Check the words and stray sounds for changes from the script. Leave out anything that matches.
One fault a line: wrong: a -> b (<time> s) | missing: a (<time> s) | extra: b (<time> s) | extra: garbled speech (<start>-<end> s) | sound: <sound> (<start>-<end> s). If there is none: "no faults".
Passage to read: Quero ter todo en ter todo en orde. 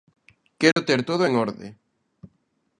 sound: dropout (0.7-0.8 s)
missing: ter todo en (1.3 s)